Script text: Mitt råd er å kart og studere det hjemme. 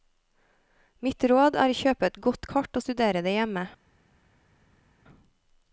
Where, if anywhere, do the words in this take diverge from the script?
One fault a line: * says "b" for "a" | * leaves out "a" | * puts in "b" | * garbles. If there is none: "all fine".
* puts in "kjøpe et godt"